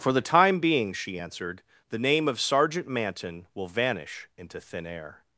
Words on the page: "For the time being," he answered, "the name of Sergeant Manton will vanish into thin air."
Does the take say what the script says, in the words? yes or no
no